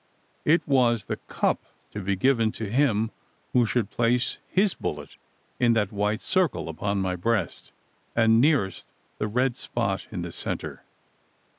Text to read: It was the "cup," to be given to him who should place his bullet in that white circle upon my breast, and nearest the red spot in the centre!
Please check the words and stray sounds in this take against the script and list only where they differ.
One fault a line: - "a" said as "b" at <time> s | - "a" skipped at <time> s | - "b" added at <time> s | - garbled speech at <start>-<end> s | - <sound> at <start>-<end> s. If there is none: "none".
none